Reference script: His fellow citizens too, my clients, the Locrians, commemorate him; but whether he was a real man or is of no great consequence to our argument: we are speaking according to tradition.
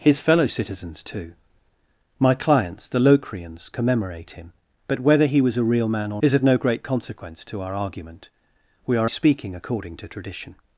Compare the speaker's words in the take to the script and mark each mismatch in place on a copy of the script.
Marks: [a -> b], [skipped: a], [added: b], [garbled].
His fellow citizens too, my clients, the Locrians, commemorate him; but whether he was a real man or is of no great consequence to our argument: we are speaking according to tradition.